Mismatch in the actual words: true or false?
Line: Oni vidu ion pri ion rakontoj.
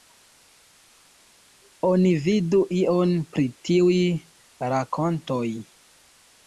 true